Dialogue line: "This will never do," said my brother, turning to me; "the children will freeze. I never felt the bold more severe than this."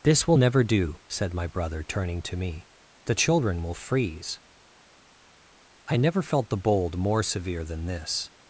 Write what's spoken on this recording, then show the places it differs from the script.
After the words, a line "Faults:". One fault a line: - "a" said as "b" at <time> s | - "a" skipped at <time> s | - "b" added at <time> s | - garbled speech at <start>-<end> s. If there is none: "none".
"This will never do," said my brother, turning to me; "the children will freeze. I never felt the bold more severe than this."
Faults:
none